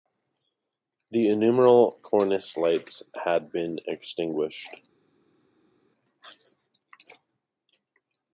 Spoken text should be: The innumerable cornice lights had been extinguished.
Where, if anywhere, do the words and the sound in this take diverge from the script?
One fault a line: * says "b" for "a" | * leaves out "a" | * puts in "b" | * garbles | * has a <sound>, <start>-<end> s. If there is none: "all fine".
all fine